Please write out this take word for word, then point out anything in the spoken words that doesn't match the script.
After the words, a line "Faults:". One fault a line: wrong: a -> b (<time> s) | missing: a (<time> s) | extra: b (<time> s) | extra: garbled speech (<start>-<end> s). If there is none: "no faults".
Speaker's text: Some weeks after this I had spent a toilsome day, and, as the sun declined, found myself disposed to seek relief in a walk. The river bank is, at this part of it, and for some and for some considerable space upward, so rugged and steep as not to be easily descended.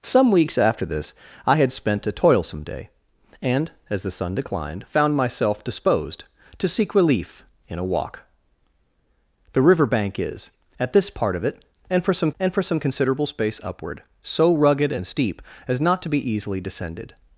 Some weeks after this I had spent a toilsome day, and, as the sun declined, found myself disposed to seek relief in a walk. The river bank is, at this part of it, and for some and for some considerable space upward, so rugged and steep as not to be easily descended.
Faults:
no faults